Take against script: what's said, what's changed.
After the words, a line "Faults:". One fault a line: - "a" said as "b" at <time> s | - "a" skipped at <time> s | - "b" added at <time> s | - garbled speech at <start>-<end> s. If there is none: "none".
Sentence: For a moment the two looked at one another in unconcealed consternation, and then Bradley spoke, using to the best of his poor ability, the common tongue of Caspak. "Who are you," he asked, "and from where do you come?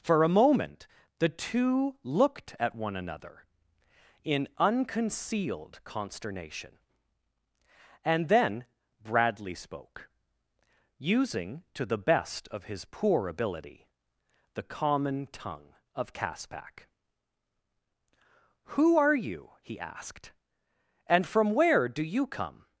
For a moment the two looked at one another in unconcealed consternation, and then Bradley spoke, using to the best of his poor ability, the common tongue of Caspak. "Who are you," he asked, "and from where do you come?
Faults:
none